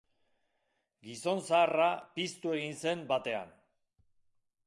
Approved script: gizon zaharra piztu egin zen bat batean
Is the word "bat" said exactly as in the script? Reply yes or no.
no